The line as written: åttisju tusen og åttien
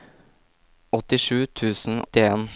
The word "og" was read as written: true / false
false